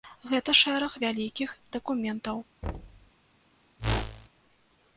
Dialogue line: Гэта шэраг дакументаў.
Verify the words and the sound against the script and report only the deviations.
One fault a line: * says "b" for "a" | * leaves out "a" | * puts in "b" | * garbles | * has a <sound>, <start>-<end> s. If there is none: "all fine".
* puts in "вялікіх"
* has a thud, 2.6-3.1 s
* has a whoosh, 3.8-4.3 s